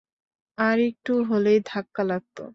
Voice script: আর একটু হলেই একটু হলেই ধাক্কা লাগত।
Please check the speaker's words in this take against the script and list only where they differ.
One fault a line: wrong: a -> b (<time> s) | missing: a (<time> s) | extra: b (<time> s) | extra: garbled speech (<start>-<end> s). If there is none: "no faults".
missing: একটু হলেই (1.6 s)